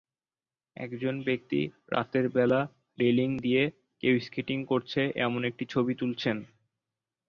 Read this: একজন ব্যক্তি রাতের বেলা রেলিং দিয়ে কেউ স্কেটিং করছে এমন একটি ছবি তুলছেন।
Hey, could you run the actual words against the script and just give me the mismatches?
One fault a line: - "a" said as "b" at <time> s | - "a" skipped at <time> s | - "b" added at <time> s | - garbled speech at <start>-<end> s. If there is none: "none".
none